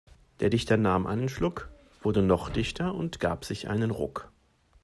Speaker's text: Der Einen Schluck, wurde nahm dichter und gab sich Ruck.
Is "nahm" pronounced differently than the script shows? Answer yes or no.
yes